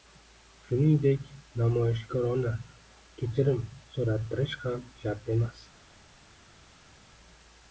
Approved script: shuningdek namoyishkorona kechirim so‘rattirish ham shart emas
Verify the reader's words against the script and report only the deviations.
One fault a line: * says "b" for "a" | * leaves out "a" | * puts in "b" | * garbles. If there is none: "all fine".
all fine